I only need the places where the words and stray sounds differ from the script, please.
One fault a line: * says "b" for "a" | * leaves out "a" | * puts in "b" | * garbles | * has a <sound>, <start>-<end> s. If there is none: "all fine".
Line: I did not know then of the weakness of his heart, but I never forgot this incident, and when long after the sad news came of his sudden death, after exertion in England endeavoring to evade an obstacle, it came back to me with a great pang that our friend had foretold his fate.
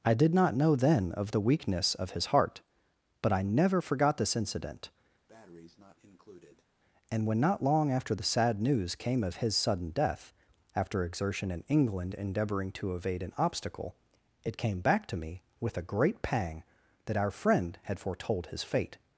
* has a breath, 5.3-6.7 s
* puts in "not"